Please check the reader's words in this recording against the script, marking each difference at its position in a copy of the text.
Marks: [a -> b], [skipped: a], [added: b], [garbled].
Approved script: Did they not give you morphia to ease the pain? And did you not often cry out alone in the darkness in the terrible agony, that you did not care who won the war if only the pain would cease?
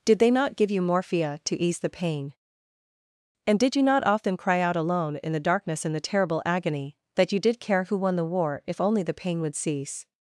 Did they not give you morphia to ease the pain? And did you not often cry out alone in the darkness in the terrible agony, that you did [skipped: not] care who won the war if only the pain would cease?